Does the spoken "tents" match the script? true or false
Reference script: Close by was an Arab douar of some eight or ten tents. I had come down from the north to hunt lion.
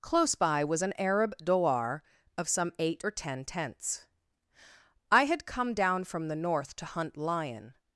true